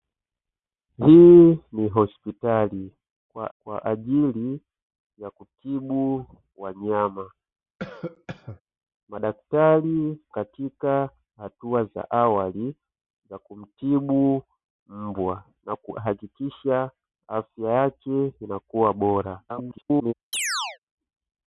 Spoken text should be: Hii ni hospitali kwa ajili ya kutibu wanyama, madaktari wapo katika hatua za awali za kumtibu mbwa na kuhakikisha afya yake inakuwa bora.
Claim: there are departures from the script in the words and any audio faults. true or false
true